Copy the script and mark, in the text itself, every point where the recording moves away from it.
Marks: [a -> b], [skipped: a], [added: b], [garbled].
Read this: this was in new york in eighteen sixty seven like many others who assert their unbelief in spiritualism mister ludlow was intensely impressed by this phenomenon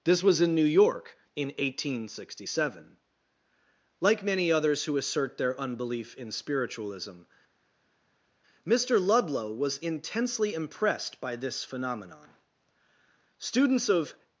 this was in new york in eighteen sixty seven like many others who assert their unbelief in spiritualism mister ludlow was intensely impressed by this phenomenon [added: students of]